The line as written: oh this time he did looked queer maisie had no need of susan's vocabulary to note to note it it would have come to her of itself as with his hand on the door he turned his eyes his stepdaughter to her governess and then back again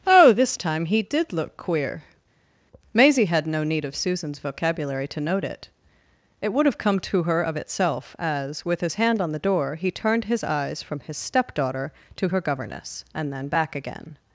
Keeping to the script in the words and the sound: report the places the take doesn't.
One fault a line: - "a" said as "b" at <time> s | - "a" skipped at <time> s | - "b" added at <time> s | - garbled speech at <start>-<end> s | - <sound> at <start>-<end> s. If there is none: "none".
- "looked" said as "look" at 1.3 s
- "to note" skipped at 5.4 s
- "from" added at 10.8 s